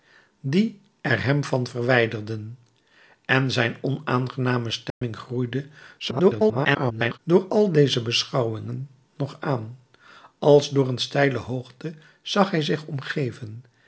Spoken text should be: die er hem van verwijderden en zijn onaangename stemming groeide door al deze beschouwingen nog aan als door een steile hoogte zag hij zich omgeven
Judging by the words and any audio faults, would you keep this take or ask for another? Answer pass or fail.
fail